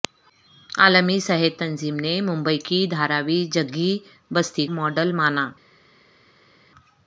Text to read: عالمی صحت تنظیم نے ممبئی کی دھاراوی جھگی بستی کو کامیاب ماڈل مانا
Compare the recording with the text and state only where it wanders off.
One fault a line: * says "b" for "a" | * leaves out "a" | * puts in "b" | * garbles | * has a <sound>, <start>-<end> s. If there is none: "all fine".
* leaves out "کو کامیاب"